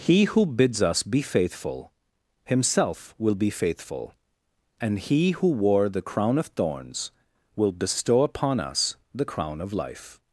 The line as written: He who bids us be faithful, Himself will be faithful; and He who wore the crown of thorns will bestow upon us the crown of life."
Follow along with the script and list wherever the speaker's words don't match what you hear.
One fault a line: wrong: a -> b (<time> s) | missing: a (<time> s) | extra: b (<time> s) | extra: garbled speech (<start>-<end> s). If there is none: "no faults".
no faults